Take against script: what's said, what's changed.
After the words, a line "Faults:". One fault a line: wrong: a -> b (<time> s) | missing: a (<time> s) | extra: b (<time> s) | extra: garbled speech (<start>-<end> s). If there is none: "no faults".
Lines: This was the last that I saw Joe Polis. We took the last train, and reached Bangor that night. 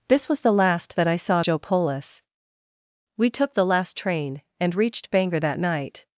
This was the last that I saw Joe Polis. We took the last train, and reached Bangor that night.
Faults:
no faults